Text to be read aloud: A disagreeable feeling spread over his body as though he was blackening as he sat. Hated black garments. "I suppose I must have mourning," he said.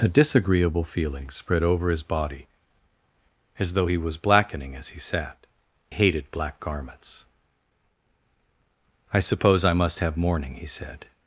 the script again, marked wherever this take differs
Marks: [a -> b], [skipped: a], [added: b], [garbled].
A disagreeable feeling spread over his body as though he was blackening as he sat. Hated black garments. "I suppose I must have mourning," he said.